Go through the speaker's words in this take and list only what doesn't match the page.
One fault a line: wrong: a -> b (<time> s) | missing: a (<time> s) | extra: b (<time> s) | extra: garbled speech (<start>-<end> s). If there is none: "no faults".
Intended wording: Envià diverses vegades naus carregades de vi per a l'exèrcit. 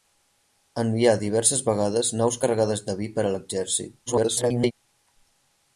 extra: garbled speech (4.1-4.7 s)